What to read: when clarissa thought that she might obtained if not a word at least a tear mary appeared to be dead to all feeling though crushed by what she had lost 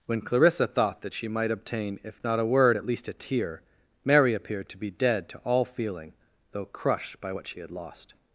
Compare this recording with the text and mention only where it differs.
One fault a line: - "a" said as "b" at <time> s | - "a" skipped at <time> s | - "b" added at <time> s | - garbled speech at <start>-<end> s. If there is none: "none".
- "obtained" said as "obtain" at 1.5 s